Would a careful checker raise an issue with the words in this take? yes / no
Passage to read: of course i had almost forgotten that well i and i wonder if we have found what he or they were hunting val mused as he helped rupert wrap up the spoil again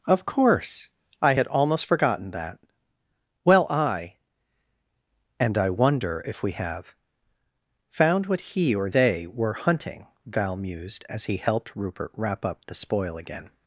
no